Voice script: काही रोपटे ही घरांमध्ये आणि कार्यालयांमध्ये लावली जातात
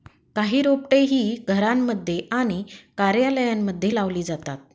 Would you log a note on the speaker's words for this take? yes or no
no